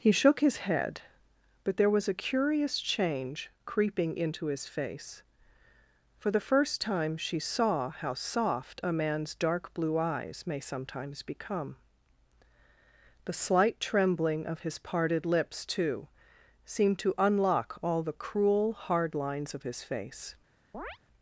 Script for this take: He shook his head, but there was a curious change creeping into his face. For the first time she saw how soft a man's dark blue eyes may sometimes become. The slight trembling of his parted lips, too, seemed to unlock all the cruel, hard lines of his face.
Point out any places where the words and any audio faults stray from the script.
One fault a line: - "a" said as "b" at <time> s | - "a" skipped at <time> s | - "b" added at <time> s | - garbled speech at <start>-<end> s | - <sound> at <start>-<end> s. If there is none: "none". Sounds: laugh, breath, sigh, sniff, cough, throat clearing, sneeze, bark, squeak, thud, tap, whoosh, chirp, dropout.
- chirp at 20.7-21.0 s